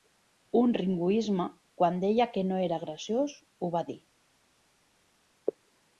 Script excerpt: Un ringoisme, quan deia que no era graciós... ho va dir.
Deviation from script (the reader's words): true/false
false